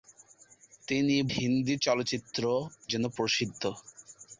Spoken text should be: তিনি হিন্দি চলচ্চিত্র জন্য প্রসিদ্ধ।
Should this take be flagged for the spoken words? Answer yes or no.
no